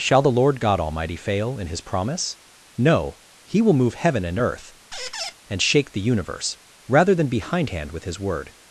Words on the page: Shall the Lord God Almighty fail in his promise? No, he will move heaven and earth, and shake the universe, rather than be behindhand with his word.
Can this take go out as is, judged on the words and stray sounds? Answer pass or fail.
fail